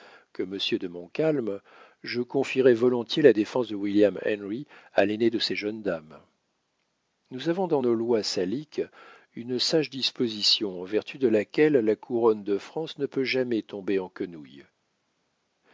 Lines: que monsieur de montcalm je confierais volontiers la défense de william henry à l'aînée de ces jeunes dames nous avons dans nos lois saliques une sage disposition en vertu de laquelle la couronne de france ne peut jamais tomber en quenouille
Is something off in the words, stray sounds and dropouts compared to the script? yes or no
no